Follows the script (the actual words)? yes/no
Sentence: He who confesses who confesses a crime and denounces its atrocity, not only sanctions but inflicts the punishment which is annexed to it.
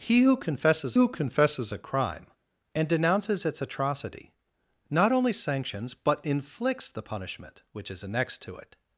yes